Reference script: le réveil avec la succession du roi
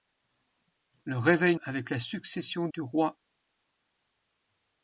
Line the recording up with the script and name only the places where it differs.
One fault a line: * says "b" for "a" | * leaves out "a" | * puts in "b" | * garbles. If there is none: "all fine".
all fine